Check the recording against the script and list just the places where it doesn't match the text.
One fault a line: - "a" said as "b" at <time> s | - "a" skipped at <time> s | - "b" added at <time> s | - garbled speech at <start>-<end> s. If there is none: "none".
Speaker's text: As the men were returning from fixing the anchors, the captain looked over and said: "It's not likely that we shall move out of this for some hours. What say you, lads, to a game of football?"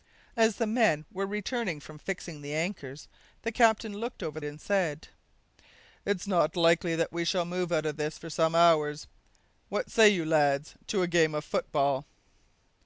none